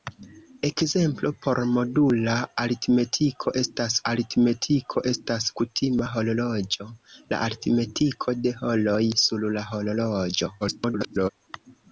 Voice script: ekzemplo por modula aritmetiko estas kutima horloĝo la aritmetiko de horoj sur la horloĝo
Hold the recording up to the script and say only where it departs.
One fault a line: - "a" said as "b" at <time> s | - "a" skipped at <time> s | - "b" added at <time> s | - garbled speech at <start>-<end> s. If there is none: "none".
- "aritmetiko estas" added at 4.1 s
- garbled speech at 10.6-11.3 s